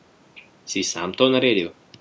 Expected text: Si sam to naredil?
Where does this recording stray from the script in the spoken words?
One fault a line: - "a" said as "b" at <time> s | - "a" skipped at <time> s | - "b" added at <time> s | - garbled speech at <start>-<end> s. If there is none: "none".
none